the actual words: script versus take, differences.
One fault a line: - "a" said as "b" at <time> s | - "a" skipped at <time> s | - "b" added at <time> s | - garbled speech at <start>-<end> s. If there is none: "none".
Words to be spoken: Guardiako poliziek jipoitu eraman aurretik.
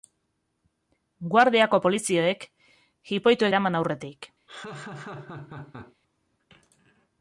none